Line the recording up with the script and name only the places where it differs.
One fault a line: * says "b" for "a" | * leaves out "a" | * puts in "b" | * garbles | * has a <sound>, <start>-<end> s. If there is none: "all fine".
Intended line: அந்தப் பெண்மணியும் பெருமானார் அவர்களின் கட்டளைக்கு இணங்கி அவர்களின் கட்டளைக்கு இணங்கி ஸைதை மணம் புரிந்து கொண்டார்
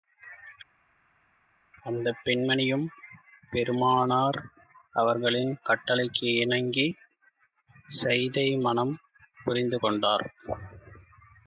* leaves out "அவர்களின் கட்டளைக்கு இணங்கி"